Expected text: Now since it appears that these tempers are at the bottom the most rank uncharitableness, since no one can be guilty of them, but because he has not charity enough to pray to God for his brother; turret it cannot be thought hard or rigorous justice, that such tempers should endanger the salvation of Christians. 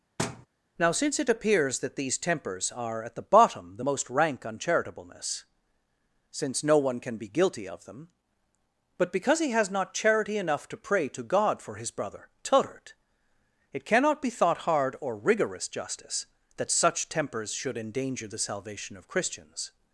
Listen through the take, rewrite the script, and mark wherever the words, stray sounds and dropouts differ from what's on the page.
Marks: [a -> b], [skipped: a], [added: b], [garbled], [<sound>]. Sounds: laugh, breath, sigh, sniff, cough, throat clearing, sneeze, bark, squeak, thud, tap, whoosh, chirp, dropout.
[thud] Now since it appears that these tempers are at the bottom the most rank uncharitableness, since no one can be guilty of them, but because he has not charity enough to pray to God for his brother; turret it cannot be thought hard or rigorous justice, that such tempers should endanger the salvation of Christians.